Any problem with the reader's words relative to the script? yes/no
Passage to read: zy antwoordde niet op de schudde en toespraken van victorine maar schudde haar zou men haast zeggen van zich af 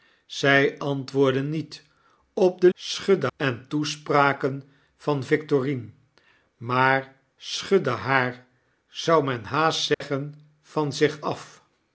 no